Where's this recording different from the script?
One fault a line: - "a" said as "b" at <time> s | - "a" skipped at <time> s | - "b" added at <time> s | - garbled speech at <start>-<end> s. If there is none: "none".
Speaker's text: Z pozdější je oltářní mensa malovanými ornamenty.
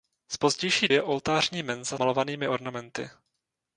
none